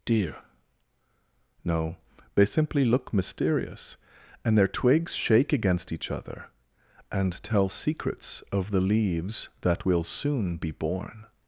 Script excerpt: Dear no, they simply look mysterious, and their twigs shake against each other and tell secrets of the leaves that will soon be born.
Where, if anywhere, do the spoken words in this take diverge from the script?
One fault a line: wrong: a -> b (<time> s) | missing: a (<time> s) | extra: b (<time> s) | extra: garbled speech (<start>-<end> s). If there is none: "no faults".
no faults